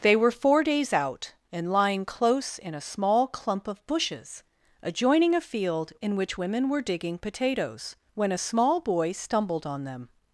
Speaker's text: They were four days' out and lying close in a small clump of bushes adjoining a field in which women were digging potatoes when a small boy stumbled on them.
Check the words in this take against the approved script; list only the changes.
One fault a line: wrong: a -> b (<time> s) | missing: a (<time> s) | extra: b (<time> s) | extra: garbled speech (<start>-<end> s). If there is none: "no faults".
no faults